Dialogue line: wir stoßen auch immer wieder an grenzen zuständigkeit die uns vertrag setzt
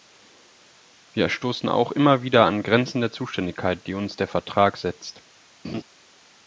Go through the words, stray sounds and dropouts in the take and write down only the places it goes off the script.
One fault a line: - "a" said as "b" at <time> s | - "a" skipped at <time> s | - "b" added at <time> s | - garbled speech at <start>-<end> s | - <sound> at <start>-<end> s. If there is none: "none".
- "der" added at 3.0 s
- "der" added at 4.2 s
- laugh at 5.6-5.8 s